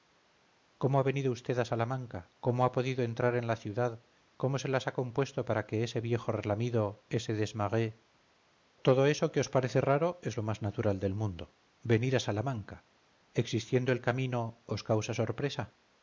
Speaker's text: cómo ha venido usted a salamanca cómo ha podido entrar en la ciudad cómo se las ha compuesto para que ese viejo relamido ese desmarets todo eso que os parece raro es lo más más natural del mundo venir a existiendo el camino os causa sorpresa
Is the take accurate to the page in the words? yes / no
no